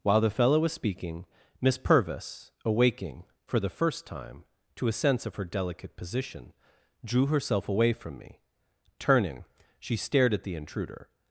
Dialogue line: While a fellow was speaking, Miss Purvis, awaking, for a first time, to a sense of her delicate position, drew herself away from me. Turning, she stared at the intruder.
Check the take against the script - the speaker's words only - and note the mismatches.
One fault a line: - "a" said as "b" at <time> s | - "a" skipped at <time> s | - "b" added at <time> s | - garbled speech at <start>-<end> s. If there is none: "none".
- "a" said as "the" at 0.2 s
- "a" said as "the" at 3.6 s